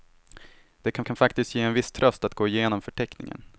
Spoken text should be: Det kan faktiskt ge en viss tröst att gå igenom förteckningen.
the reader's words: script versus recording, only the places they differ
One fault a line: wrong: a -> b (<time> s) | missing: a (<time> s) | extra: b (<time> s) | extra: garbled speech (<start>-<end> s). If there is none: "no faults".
extra: kan (1.0 s)